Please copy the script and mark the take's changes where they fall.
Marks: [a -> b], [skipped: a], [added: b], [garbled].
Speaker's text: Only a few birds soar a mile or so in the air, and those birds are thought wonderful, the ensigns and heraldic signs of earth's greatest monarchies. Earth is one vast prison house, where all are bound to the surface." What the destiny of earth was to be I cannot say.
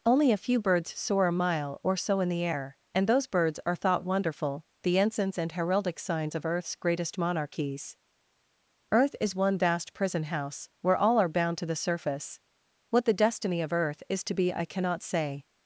Only a few birds soar a mile or so in the air, and those birds are thought wonderful, the ensigns and heraldic signs of earth's greatest monarchies. Earth is one vast prison house, where all are bound to the surface." What the destiny of earth [was -> is] to be I cannot say.